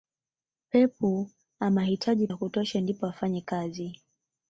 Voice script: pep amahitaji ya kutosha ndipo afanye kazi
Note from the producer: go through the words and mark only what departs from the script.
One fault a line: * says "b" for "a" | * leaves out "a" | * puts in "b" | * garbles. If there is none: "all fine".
all fine